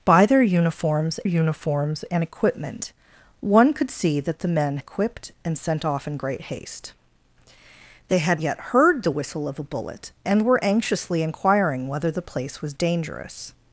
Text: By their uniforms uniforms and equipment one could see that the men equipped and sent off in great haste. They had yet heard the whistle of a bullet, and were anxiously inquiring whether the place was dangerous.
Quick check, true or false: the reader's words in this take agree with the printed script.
true